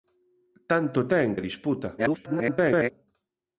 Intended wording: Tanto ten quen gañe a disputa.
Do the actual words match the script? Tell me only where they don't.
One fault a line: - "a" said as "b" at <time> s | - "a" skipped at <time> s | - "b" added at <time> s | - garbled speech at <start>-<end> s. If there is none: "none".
- "quen gañe" skipped at 1.3 s
- garbled speech at 2.0-2.9 s